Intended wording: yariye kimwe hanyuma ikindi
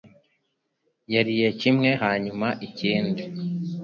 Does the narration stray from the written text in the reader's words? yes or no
no